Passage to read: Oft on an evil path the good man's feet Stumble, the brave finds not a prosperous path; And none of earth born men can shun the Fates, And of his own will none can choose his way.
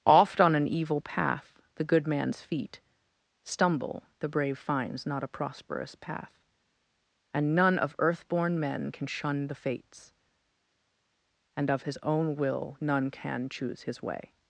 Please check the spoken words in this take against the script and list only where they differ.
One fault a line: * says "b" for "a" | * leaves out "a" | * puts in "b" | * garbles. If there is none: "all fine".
all fine